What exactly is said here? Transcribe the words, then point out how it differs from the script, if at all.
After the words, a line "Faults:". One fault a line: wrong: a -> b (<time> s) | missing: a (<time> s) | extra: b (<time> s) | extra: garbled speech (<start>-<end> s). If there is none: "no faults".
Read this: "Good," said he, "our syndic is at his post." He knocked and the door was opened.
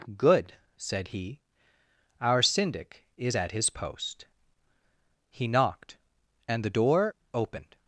"Good," said he, "our syndic is at his post." He knocked and the door opened.
Faults:
missing: was (7.2 s)